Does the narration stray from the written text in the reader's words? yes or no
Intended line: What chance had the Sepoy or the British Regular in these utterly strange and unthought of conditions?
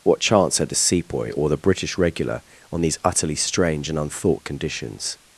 yes